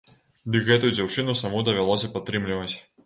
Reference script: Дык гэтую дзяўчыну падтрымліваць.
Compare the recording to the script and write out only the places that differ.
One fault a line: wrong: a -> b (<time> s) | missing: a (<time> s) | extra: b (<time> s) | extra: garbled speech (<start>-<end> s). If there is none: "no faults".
extra: саму давялося (1.4 s)